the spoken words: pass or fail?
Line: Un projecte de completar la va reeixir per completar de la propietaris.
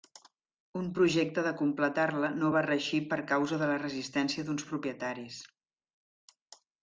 fail